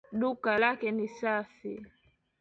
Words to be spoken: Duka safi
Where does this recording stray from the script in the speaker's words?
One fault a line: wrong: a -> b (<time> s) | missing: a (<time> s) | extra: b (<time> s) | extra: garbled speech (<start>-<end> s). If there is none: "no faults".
extra: lake ni (0.6 s)